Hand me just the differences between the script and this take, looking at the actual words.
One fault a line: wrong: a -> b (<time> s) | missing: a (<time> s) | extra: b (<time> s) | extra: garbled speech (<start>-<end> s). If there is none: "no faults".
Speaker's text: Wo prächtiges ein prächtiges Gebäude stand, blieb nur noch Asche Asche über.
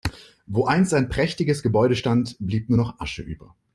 wrong: prächtiges -> einst (0.7 s)
missing: Asche (3.2 s)